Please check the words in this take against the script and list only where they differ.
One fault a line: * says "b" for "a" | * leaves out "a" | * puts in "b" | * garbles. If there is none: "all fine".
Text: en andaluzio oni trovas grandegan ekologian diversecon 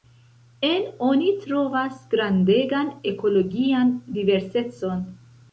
* leaves out "andaluzio"